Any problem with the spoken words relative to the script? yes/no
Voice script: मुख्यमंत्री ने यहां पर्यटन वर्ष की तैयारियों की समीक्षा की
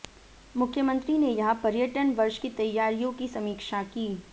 no